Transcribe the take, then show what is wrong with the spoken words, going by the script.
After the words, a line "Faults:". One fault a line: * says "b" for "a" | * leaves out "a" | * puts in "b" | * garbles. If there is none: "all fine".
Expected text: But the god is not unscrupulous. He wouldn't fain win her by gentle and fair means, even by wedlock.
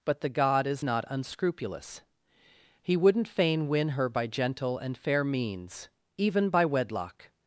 But the god is not unscrupulous. He wouldn't fain win her by gentle and fair means, even by wedlock.
Faults:
all fine